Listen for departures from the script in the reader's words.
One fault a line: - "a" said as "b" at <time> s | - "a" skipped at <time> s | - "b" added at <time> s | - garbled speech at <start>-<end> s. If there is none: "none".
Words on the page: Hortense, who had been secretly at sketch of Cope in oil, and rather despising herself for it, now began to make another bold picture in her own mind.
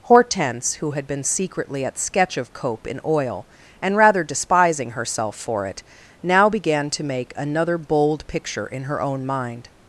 none